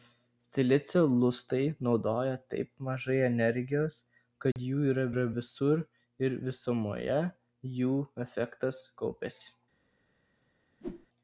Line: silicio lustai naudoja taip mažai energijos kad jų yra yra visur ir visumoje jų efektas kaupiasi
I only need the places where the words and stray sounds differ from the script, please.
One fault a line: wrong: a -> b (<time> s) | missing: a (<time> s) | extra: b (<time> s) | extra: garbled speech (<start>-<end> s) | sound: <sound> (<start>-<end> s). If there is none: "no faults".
sound: dropout (4.5-4.6 s)
sound: whoosh (10.8-11.1 s)